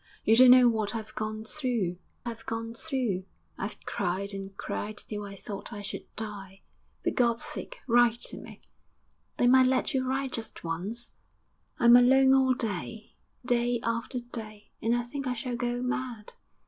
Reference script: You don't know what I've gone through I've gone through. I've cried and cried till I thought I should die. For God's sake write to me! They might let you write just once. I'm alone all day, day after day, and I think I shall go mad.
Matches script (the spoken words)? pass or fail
pass